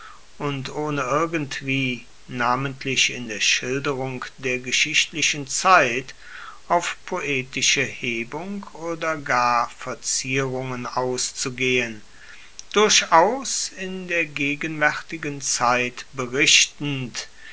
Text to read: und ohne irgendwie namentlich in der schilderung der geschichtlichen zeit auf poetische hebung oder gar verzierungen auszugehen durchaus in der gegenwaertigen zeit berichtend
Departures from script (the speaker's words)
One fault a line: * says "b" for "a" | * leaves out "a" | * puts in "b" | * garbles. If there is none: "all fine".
all fine